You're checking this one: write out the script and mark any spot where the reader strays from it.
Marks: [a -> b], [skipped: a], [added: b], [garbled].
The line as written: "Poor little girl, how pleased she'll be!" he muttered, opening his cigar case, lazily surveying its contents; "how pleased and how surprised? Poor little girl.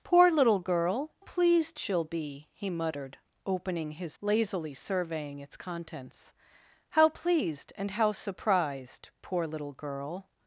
"Poor little girl, [skipped: how] pleased she'll be!" he muttered, opening his [skipped: cigar case,] lazily surveying its contents; "how pleased and how surprised? Poor little girl.